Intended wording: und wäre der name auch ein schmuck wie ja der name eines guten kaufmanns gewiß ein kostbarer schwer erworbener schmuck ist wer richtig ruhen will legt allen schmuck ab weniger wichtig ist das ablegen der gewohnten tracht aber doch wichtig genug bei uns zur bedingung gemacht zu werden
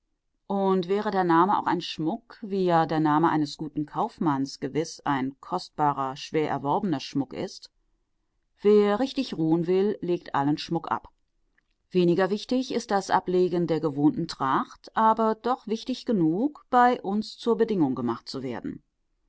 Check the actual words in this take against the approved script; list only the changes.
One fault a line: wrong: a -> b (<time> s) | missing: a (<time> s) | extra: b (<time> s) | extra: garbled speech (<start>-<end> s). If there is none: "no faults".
no faults